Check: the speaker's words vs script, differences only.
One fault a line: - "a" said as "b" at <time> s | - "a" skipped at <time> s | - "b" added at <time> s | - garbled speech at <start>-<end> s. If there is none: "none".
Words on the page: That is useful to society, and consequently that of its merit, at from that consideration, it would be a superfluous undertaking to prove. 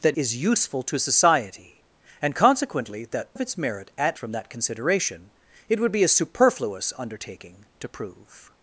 none